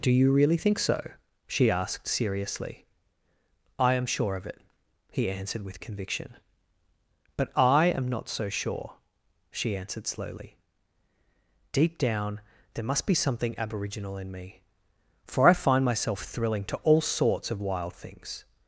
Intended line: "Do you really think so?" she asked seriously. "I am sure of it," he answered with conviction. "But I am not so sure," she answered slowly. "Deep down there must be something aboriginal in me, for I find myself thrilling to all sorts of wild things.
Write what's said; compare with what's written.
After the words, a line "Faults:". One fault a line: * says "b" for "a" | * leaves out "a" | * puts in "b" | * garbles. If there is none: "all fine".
"Do you really think so?" she asked seriously. "I am sure of it," he answered with conviction. "But I am not so sure," she answered slowly. "Deep down there must be something aboriginal in me, for I find myself thrilling to all sorts of wild things.
Faults:
all fine